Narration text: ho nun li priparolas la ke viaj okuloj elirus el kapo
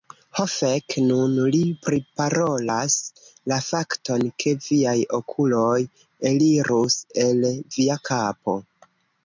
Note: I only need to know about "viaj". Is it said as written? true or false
true